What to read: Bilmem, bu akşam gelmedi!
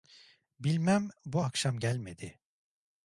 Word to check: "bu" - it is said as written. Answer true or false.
true